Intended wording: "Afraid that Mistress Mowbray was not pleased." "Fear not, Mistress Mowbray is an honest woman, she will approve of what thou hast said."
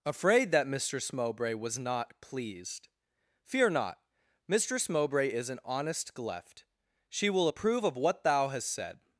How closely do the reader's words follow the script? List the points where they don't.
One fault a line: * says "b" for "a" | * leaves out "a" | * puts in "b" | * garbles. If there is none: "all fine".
* says "gleft" for "woman"